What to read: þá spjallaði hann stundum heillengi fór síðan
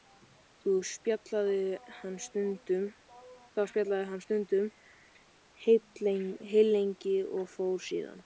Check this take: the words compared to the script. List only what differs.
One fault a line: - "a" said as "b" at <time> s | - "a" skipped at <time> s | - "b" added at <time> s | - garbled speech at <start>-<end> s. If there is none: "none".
- "og" added at 7.4 s